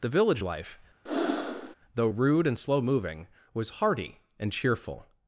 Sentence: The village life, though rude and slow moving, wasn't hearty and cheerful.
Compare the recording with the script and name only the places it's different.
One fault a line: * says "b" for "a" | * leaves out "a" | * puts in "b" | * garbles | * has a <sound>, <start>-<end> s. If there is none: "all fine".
* has a breath, 1.1-1.8 s
* says "was" for "wasn't"